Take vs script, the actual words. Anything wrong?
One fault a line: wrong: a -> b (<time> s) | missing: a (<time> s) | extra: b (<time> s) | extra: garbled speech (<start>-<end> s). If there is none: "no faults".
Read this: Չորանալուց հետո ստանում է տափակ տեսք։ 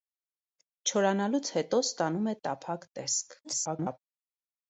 extra: garbled speech (3.4-4.0 s)